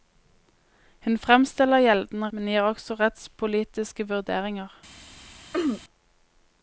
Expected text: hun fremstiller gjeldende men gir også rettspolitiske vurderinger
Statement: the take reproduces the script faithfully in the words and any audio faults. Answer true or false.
false